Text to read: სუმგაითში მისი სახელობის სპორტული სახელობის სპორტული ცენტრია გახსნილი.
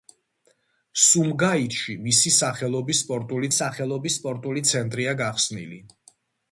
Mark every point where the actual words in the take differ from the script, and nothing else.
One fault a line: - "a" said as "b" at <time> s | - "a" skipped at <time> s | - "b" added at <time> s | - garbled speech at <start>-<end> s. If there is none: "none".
none